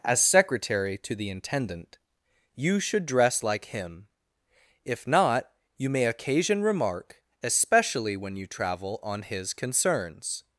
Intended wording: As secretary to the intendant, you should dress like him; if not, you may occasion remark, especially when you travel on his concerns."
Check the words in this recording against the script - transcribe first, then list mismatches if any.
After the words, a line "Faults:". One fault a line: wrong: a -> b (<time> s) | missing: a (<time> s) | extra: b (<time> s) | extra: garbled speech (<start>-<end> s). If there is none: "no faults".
As secretary to the intendant, you should dress like him; if not, you may occasion remark, especially when you travel on his concerns."
Faults:
no faults